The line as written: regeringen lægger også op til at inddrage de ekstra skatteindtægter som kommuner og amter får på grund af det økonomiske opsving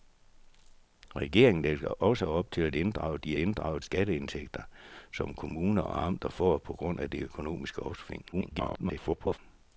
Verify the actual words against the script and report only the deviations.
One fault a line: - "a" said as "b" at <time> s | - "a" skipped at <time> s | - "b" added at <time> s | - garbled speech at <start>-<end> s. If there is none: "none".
- "ekstra" said as "inddrage" at 3.4 s
- garbled speech at 8.3-9.4 s